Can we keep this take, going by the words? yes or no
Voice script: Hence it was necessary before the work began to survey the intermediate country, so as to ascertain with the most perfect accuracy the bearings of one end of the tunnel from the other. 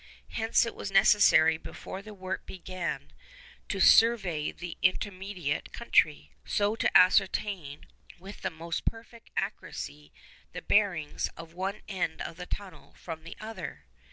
yes